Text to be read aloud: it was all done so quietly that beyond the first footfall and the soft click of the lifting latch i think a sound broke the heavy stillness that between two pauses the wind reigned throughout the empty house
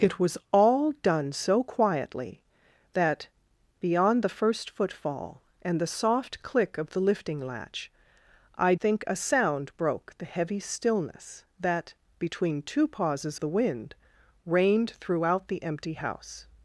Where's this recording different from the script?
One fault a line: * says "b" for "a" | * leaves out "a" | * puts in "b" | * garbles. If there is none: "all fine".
all fine